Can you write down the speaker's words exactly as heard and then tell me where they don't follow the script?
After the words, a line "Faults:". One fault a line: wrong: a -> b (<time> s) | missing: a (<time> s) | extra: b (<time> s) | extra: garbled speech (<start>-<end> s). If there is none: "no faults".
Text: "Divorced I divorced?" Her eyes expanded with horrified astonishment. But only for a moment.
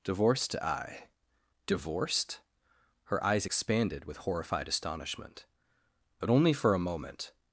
"Divorced I divorced?" Her eyes expanded with horrified astonishment. But only for a moment.
Faults:
no faults